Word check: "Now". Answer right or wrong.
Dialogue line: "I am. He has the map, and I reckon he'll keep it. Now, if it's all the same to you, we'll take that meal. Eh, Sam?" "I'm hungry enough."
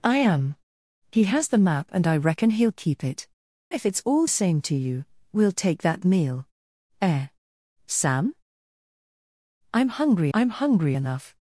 wrong